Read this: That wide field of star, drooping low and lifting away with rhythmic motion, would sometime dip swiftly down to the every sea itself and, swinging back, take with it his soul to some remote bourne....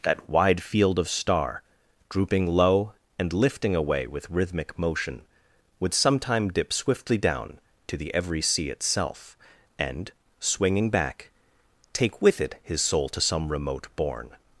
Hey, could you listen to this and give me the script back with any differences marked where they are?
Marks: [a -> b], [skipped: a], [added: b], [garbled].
That wide field of star, drooping low and lifting away with rhythmic motion, would sometime dip swiftly down to the every sea itself and, swinging back, take with it his soul to some remote bourne....